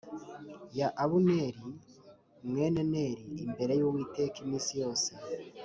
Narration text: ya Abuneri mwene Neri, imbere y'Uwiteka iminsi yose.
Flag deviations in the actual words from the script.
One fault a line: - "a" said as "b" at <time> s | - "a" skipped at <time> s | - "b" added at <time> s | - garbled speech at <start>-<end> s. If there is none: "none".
none